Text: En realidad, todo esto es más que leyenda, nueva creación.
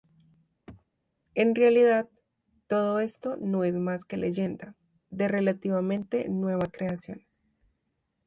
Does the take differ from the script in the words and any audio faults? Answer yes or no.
yes